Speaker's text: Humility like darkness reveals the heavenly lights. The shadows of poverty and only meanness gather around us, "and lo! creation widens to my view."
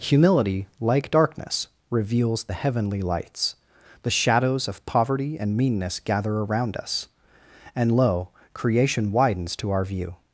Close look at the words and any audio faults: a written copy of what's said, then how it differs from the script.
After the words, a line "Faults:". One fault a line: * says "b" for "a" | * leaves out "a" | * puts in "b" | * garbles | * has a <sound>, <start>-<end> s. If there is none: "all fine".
Humility like darkness reveals the heavenly lights. The shadows of poverty and meanness gather around us, "and lo! creation widens to our view."
Faults:
* leaves out "only"
* says "our" for "my"